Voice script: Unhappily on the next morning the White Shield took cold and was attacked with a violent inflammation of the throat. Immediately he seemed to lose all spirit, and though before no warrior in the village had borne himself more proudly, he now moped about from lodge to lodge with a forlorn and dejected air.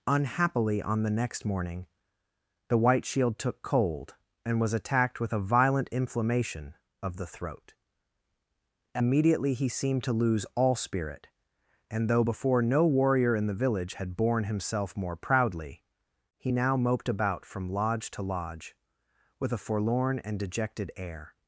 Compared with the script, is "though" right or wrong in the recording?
right